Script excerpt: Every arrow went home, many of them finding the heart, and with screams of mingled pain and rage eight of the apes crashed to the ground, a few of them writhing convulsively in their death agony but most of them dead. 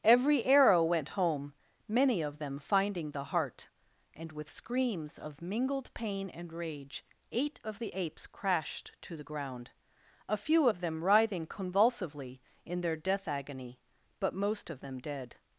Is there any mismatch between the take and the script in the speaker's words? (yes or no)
no